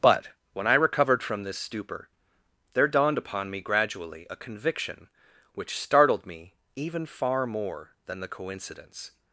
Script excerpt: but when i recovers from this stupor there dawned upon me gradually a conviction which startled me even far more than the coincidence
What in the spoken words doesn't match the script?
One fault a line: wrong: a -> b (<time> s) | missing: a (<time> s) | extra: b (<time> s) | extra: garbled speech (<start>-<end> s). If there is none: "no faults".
wrong: recovers -> recovered (0.7 s)